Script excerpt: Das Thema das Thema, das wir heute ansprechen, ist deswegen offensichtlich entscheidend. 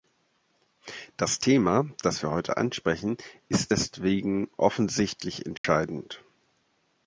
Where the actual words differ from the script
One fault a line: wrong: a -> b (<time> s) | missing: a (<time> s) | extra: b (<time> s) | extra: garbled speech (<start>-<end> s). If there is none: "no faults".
missing: Thema das (2.2 s)